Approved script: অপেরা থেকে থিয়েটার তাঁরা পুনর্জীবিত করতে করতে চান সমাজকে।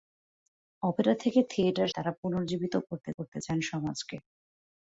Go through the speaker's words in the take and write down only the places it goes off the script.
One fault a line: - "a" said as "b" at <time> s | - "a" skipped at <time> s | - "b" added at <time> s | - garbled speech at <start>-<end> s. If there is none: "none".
none